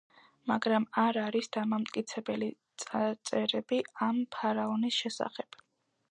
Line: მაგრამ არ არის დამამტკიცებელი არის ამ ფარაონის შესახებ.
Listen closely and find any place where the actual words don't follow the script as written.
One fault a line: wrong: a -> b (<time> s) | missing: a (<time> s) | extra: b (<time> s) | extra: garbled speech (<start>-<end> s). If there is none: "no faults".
wrong: არის -> წარწერები (2.8 s)